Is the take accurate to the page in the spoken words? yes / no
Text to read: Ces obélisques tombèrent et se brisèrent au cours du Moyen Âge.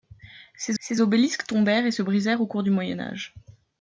no